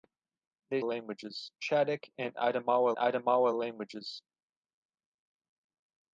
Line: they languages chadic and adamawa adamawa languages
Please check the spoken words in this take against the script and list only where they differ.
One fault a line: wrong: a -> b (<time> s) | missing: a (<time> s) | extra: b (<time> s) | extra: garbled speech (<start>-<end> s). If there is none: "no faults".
no faults